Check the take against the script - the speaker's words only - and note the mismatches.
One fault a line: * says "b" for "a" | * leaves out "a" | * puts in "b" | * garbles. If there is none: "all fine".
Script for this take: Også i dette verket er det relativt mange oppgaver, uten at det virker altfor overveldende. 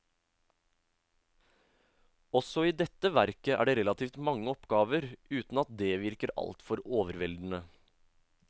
all fine